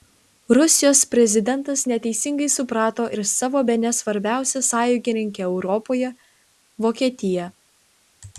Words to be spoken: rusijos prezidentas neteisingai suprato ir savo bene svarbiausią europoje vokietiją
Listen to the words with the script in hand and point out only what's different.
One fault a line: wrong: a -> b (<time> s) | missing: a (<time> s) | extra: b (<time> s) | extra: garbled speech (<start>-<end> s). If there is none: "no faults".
extra: sąjungininkę (4.7 s)